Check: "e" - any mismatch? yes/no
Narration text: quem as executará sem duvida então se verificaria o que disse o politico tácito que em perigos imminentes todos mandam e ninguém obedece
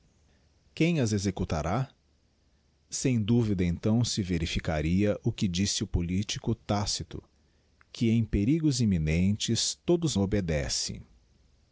yes